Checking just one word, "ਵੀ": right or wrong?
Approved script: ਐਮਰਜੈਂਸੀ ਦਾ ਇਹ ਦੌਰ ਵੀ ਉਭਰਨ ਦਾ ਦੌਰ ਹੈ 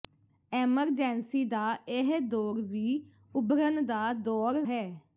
right